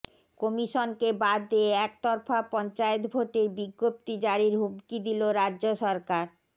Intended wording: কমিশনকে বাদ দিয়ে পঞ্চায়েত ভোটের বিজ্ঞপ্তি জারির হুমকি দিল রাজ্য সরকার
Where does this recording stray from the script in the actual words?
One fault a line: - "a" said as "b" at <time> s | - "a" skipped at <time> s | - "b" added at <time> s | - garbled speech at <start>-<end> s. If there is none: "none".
- "একতরফা" added at 1.9 s